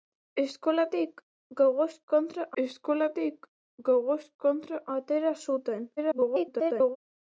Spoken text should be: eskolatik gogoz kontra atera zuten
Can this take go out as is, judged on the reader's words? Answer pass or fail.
fail